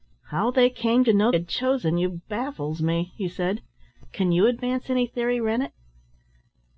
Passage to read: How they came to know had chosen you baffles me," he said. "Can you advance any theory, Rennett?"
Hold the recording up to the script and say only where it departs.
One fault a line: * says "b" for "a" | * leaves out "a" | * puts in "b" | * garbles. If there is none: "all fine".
all fine